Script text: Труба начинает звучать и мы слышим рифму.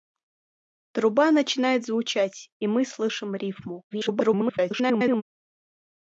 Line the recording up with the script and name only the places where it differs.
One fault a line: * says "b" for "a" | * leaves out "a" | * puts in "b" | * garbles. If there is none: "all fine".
* garbles